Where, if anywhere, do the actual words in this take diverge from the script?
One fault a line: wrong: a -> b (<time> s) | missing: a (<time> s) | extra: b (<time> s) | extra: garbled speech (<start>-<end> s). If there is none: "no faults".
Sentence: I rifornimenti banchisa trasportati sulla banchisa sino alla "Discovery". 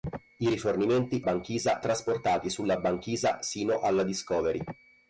no faults